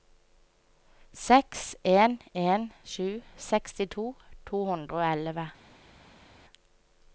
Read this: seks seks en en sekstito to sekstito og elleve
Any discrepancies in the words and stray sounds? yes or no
yes